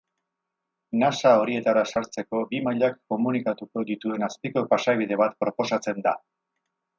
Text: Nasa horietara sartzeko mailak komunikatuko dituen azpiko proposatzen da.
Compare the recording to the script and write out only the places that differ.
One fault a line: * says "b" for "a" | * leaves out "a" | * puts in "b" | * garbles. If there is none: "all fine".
* puts in "bi"
* puts in "pasabide bat"